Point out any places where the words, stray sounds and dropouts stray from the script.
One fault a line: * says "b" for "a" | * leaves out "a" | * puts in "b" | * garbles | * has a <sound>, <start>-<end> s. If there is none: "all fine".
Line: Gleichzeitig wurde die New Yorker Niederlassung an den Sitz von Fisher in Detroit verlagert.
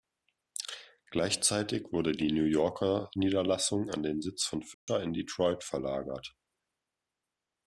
* has a dropout, 4.7-4.9 s